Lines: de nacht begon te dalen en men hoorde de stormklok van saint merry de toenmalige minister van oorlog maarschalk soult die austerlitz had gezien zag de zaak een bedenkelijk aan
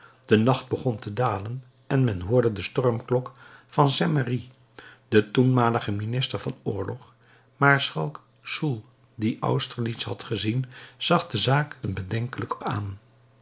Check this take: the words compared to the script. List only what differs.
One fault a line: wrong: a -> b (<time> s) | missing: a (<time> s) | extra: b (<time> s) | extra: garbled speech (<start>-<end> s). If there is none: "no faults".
no faults